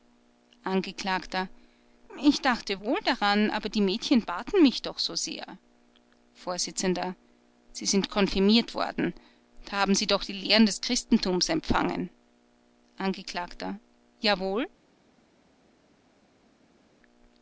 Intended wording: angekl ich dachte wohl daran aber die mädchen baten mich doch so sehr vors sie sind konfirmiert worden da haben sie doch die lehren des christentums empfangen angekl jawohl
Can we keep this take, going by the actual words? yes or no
yes